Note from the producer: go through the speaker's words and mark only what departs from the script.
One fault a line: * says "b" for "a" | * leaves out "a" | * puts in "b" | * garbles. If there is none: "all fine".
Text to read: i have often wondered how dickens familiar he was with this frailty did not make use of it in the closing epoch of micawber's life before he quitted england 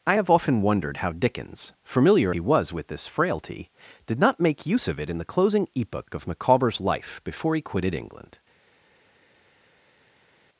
all fine